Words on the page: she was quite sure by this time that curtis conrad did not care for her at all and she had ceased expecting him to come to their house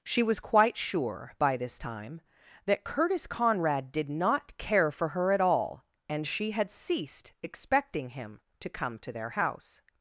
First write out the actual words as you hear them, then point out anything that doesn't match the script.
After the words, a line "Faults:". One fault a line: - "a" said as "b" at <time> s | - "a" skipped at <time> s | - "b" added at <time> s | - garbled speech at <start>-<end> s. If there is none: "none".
she was quite sure by this time that curtis conrad did not care for her at all and she had ceased expecting him to come to their house
Faults:
none